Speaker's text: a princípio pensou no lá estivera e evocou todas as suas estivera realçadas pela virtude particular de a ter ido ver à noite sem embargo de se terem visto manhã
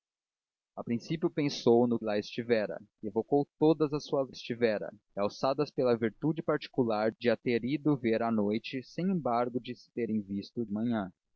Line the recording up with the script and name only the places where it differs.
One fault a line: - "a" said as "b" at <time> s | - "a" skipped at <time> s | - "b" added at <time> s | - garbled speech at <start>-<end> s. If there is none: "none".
none